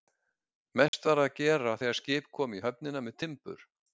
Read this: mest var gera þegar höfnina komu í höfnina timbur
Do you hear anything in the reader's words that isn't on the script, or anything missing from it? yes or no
yes